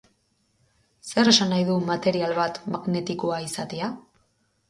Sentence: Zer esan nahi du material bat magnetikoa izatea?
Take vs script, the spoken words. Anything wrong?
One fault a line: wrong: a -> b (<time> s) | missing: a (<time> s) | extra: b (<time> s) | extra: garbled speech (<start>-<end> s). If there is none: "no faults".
no faults